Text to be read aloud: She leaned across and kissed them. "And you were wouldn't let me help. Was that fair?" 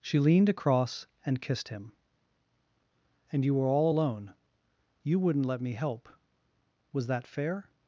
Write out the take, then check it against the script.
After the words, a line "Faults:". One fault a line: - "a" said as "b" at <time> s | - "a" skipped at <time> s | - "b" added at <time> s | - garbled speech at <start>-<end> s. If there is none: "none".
She leaned across and kissed him. "And you were all alone. You wouldn't let me help. Was that fair?"
Faults:
- "them" said as "him" at 1.7 s
- "all alone You" added at 3.7 s